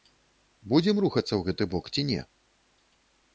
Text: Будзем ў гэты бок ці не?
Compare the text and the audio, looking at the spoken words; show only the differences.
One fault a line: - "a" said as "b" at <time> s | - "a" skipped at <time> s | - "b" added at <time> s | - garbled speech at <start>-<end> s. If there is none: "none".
- "рухацца" added at 1.1 s